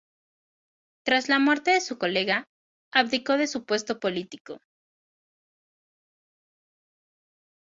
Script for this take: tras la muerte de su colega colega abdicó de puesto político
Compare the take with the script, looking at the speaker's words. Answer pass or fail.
fail